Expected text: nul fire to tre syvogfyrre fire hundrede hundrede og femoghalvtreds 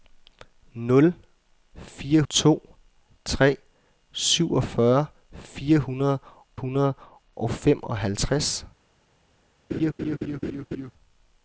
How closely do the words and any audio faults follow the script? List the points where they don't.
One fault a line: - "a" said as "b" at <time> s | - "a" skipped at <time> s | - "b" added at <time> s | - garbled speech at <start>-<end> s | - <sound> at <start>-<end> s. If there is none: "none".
- laugh at 9.7-10.9 s